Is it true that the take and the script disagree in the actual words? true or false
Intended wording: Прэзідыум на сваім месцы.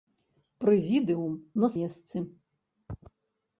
true